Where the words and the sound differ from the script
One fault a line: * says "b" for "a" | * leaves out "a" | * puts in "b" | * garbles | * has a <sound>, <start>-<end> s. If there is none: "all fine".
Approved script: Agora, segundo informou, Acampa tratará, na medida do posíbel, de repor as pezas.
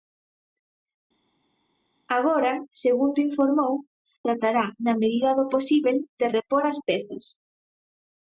* leaves out "Acampa"